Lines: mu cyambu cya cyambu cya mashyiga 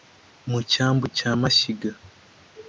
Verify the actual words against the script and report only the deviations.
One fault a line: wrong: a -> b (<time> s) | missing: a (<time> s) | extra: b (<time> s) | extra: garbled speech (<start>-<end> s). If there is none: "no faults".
missing: cyambu cya (1.3 s)